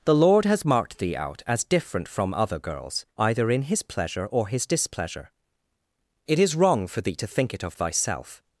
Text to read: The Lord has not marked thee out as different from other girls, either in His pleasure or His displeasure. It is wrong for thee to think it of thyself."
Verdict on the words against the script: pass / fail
fail